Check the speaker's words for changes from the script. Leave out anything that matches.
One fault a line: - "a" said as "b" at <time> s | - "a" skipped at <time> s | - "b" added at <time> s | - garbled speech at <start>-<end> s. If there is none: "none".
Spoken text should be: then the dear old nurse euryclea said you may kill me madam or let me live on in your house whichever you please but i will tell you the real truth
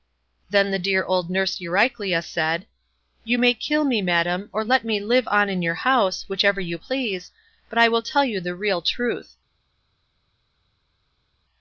none